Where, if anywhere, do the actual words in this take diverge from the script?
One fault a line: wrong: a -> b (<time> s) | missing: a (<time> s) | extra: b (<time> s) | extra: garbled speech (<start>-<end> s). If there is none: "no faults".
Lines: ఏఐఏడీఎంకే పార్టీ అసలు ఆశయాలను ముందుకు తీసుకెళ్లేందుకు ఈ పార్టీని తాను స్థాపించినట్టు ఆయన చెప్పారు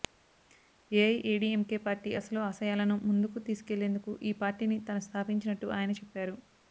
no faults